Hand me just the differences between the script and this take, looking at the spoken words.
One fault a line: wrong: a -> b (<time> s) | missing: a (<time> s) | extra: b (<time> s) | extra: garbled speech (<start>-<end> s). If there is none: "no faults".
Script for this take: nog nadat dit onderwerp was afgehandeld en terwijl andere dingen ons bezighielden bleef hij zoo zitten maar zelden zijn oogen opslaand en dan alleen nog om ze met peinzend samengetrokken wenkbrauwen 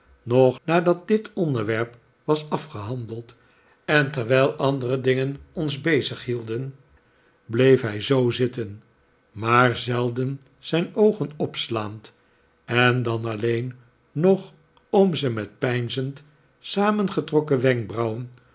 no faults